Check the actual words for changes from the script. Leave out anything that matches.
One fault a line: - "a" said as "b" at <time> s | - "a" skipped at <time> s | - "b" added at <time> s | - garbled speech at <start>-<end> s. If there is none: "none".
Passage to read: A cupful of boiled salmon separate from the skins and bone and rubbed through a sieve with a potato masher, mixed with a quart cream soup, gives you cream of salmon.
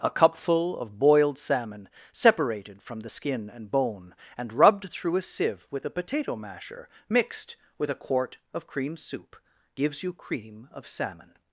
- "separate" said as "separated" at 2.1 s
- "skins" said as "skin" at 3.1 s
- "of" added at 8.5 s